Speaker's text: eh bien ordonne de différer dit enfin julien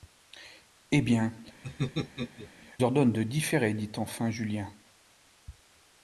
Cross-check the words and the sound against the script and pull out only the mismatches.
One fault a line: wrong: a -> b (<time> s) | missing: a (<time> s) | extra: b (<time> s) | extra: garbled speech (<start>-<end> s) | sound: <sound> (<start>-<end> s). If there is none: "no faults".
sound: laugh (1.6-2.5 s)